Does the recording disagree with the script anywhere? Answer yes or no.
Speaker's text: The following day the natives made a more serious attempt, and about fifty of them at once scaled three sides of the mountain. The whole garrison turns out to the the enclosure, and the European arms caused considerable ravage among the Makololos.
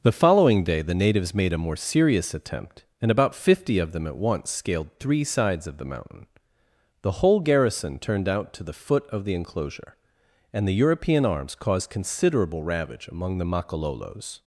yes